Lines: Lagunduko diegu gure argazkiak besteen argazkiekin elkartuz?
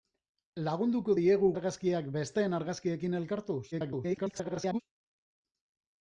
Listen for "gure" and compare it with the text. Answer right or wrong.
wrong